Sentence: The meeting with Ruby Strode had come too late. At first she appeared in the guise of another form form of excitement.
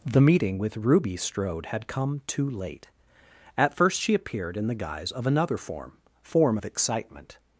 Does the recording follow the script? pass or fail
pass